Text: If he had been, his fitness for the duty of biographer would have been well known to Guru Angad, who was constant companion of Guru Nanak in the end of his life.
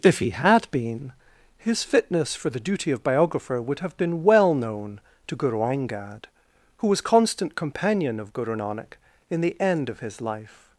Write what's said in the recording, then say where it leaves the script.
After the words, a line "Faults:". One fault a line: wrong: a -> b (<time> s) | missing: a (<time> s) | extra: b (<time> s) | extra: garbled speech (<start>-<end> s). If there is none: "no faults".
If he had been, his fitness for the duty of biographer would have been well known to Guru Angad, who was constant companion of Guru Nanak in the end of his life.
Faults:
no faults